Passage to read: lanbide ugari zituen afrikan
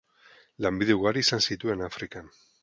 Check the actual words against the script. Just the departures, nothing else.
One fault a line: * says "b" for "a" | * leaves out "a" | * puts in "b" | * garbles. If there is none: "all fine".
* puts in "izan"